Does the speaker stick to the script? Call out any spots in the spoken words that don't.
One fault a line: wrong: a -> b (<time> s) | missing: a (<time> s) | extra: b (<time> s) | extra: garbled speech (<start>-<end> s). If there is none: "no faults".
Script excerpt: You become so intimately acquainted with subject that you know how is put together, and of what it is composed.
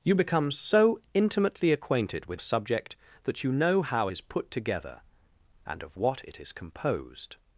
no faults